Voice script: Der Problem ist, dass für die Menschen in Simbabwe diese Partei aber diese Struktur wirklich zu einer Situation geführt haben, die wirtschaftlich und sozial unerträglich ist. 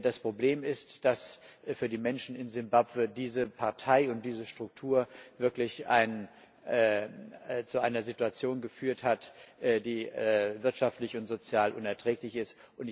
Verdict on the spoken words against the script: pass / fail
fail